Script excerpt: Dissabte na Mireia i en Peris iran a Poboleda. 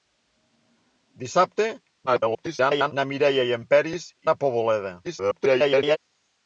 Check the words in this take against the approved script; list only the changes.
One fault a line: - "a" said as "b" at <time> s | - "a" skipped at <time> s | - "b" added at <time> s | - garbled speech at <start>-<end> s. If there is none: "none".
- garbled speech at 2.1-2.9 s
- "iran" skipped at 4.1 s
- garbled speech at 5.0-6.0 s